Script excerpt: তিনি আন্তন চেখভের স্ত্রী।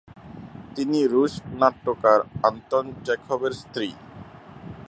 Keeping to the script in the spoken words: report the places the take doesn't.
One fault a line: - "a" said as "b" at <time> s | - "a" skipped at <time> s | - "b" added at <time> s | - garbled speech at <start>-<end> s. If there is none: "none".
- "রুশ নাট্যকার" added at 1.1 s